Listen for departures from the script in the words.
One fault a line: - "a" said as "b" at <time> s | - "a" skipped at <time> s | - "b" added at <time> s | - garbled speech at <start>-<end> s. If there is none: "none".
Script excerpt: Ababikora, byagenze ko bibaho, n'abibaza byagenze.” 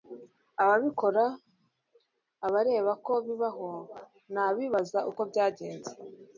- "byagenze" said as "abareba" at 2.5 s
- "uko" added at 5.1 s